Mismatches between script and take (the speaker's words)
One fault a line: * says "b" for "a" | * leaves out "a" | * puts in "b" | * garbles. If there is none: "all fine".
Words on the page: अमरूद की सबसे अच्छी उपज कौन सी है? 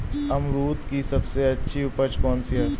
all fine